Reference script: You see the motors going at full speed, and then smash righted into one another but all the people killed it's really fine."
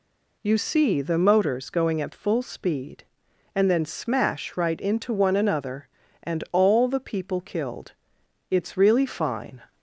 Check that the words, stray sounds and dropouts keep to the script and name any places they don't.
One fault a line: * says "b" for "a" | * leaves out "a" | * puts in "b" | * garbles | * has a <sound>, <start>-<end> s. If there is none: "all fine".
* says "right" for "righted"
* says "and" for "but"